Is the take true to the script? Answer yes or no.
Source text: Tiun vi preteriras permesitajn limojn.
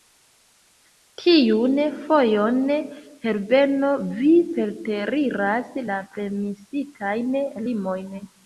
no